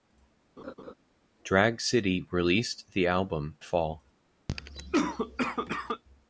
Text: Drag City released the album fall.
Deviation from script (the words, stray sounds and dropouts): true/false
true